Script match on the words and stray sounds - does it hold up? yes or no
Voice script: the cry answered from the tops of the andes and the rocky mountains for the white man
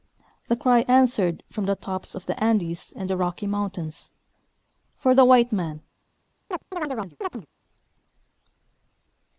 no